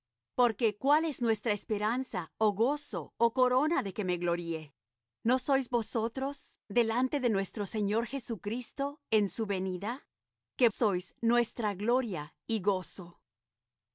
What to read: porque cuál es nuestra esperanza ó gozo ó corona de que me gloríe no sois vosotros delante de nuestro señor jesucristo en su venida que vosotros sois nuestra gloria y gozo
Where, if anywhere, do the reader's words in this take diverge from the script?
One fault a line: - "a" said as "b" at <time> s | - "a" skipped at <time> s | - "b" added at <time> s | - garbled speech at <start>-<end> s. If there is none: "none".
- "vosotros" skipped at 10.7 s